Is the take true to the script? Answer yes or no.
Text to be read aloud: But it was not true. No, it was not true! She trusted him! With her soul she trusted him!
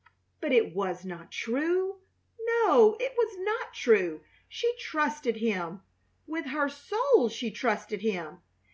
yes